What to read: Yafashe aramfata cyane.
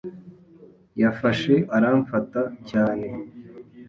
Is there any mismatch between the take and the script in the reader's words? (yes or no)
no